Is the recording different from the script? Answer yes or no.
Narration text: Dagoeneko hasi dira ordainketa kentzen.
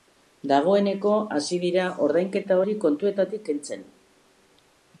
yes